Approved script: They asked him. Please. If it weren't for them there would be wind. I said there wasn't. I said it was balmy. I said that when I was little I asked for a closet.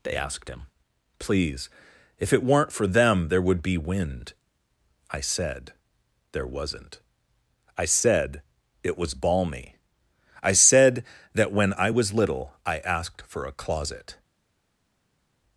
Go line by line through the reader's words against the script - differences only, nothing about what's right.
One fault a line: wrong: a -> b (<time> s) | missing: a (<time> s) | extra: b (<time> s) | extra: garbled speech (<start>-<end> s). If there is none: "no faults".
no faults